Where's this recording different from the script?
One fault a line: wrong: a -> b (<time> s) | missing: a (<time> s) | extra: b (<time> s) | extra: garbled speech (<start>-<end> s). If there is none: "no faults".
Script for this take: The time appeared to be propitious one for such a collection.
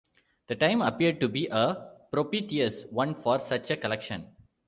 extra: a (1.5 s)